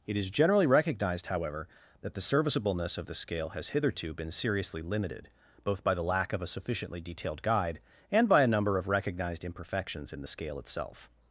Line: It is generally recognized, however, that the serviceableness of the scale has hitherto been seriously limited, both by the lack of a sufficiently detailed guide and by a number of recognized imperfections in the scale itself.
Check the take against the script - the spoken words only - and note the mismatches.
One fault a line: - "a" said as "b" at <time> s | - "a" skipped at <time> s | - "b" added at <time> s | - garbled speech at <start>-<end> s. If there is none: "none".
none